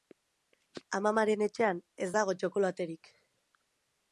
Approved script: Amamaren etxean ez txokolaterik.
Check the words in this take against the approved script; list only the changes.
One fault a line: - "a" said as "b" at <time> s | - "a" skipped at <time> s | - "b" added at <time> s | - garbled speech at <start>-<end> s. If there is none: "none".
- "dago" added at 2.1 s